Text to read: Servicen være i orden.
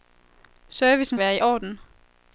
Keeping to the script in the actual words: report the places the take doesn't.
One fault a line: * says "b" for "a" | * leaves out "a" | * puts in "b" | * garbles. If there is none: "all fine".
all fine